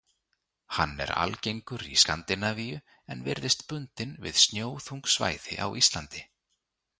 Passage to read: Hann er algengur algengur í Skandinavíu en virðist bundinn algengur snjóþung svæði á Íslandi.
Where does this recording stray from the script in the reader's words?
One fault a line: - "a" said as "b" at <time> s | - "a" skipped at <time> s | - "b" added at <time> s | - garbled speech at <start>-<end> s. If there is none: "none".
- "algengur" skipped at 1.8 s
- "algengur" said as "við" at 4.3 s